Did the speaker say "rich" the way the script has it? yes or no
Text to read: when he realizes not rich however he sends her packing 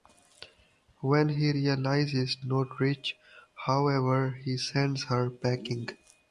yes